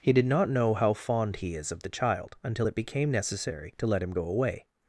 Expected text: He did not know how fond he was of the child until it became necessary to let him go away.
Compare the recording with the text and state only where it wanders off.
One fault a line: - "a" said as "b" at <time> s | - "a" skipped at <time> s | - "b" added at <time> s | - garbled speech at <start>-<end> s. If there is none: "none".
- "was" said as "is" at 1.6 s